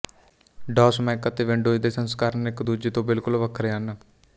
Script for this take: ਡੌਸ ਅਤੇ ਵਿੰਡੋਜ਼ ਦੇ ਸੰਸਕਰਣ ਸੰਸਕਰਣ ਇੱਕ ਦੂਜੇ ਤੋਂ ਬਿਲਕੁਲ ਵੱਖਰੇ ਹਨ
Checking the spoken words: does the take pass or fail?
fail